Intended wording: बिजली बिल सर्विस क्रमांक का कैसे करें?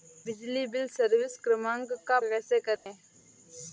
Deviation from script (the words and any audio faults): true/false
true